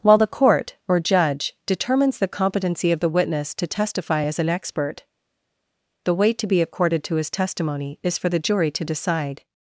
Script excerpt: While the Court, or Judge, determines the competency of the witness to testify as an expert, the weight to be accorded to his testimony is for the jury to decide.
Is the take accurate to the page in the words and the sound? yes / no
yes